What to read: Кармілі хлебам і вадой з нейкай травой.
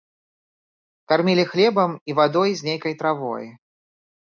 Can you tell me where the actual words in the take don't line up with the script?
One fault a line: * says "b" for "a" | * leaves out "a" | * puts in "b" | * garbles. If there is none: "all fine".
all fine